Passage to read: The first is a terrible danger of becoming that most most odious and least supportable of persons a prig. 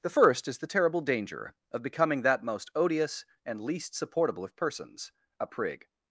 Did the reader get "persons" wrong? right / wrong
right